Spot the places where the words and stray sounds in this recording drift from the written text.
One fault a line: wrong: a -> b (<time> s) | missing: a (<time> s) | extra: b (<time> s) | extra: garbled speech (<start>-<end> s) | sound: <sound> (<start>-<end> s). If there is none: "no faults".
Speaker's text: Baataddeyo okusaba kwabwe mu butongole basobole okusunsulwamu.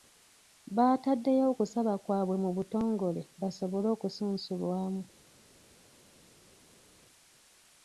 no faults